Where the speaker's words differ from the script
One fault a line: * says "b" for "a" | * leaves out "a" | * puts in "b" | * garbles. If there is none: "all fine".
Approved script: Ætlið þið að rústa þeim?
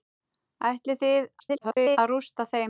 * garbles